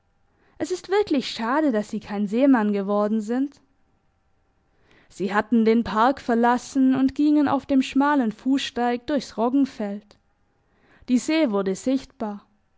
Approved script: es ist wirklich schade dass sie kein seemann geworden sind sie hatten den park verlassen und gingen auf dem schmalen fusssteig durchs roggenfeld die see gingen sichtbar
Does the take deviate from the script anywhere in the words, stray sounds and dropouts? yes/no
yes